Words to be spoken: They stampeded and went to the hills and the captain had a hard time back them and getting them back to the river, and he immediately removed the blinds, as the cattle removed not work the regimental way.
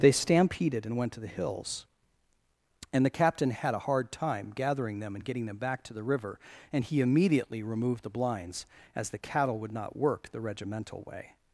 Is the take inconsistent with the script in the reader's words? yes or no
yes